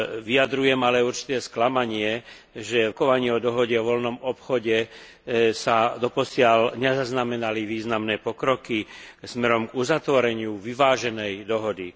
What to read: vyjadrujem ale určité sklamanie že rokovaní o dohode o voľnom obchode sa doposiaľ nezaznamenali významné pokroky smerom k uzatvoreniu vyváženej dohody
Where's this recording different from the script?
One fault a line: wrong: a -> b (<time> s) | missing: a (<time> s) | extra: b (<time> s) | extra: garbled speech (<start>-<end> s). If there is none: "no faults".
no faults